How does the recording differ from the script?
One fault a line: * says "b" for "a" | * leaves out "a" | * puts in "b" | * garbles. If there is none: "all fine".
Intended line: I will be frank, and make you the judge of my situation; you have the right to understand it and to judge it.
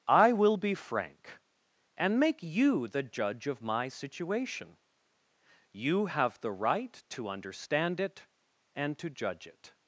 all fine